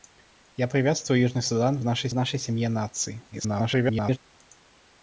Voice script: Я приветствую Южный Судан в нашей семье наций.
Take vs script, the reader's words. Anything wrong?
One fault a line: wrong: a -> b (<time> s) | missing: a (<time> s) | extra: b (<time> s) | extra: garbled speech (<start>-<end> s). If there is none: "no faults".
extra: нашей (2.1 s)
extra: garbled speech (3.3-4.2 s)